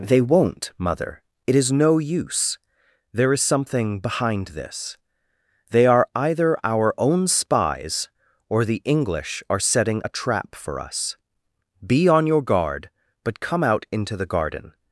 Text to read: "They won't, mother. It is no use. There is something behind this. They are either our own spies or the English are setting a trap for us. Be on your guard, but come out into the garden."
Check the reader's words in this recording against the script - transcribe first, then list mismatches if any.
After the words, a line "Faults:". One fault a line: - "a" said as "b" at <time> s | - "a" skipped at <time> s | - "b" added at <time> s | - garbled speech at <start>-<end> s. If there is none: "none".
"They won't, mother. It is no use. There is something behind this. They are either our own spies or the English are setting a trap for us. Be on your guard, but come out into the garden."
Faults:
none